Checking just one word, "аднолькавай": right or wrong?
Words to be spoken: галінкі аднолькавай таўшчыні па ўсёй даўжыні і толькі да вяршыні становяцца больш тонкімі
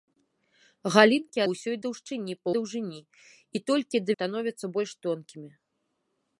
wrong